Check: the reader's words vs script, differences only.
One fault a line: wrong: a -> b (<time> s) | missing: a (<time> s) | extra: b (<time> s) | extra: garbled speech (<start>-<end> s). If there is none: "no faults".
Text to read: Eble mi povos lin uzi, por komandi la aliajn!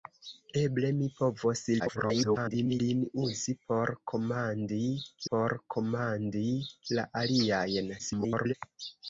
extra: garbled speech (1.8-2.8 s)
extra: por komandi (5.3 s)
extra: garbled speech (8.0-8.5 s)